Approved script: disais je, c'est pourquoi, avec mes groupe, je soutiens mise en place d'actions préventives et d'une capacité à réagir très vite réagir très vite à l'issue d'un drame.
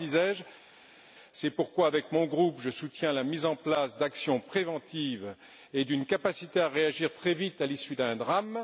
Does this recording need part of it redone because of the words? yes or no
yes